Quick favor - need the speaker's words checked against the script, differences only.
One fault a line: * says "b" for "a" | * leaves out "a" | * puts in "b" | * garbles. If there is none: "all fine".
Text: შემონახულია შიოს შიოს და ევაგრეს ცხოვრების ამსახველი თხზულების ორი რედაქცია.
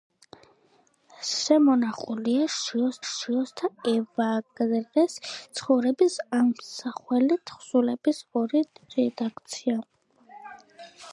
all fine